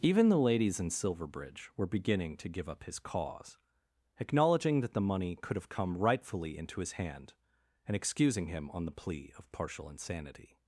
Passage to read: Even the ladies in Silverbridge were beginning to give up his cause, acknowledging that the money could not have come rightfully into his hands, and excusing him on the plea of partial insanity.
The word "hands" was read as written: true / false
false